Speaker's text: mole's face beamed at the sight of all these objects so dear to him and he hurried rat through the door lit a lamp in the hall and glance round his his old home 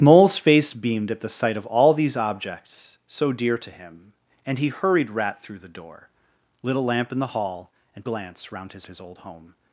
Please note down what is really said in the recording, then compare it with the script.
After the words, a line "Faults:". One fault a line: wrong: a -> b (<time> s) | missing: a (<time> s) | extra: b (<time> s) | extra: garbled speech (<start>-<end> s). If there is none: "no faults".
mole's face beamed at the sight of all these objects so dear to him and he hurried rat through the door lit a lamp in the hall and glance round his his old home
Faults:
no faults